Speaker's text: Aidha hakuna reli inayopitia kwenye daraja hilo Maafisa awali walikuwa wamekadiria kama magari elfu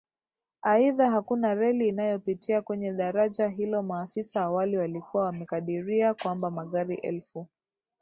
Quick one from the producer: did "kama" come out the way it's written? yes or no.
no